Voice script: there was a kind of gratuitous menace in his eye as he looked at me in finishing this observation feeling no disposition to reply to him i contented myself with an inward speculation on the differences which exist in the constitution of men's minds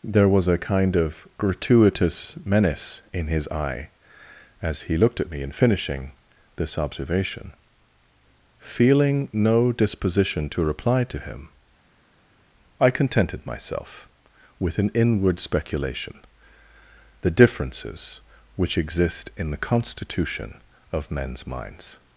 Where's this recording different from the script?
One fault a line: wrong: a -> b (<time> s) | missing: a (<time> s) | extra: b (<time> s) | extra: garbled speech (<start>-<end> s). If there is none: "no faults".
missing: on (16.2 s)